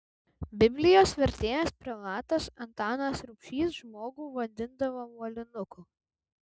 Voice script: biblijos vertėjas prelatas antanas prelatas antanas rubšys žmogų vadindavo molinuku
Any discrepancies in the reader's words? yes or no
yes